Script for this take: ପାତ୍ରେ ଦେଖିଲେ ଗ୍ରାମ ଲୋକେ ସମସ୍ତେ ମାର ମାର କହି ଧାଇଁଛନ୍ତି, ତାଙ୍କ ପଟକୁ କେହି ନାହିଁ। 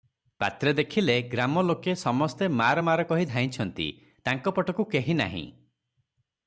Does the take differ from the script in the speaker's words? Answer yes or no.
no